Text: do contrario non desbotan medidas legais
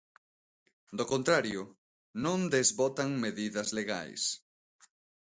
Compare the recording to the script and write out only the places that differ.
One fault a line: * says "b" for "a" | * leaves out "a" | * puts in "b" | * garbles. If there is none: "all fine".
all fine